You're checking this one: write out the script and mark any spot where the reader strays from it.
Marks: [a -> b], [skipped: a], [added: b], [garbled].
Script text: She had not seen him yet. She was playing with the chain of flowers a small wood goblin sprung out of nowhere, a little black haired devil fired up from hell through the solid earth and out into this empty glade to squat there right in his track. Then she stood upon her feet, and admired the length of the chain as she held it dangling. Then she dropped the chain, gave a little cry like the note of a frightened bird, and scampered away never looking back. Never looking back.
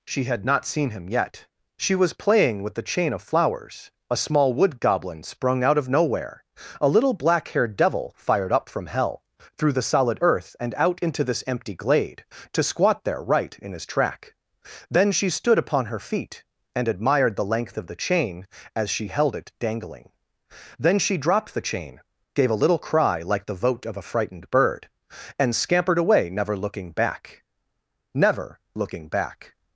She had not seen him yet. She was playing with the chain of flowers a small wood goblin sprung out of nowhere, a little black haired devil fired up from hell through the solid earth and out into this empty glade to squat there right in his track. Then she stood upon her feet, and admired the length of the chain as she held it dangling. Then she dropped the chain, gave a little cry like the [note -> vote] of a frightened bird, and scampered away never looking back. Never looking back.